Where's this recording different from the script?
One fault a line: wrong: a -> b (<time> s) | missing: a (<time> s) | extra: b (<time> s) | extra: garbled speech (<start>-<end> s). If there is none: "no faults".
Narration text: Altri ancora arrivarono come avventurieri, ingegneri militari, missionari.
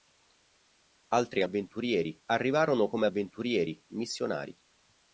wrong: ancora -> avventurieri (1.4 s)
missing: ingegneri militari (3.8 s)